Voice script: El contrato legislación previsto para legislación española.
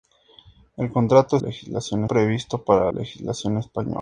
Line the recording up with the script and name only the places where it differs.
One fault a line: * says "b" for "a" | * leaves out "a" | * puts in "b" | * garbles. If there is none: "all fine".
all fine